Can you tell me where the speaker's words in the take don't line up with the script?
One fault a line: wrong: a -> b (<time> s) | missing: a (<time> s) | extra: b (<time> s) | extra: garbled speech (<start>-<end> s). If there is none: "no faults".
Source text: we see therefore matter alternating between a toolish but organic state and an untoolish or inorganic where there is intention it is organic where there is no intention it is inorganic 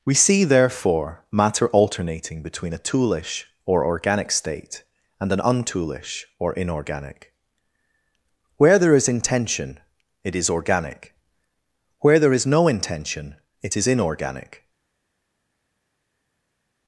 wrong: but -> or (3.6 s)